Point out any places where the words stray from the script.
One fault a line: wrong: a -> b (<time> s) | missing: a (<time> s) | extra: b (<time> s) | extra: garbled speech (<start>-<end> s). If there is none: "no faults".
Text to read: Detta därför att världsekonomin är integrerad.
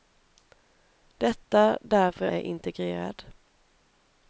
missing: att världsekonomin (2.3 s)